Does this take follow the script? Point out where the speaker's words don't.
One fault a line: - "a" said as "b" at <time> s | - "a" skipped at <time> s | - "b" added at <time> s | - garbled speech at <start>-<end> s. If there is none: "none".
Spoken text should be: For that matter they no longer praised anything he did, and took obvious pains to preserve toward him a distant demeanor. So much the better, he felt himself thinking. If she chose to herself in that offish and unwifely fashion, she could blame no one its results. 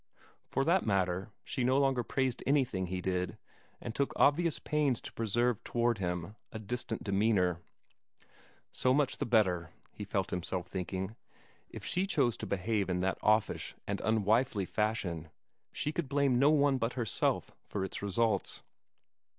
- "they" said as "she" at 1.4 s
- "herself" said as "behave" at 12.5 s
- "but herself for" added at 16.8 s